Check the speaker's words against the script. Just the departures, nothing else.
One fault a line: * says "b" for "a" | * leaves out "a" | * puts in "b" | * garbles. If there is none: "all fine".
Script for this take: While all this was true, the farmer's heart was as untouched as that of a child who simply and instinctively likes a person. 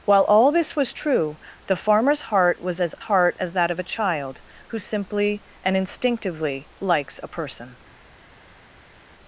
* says "heart" for "untouched"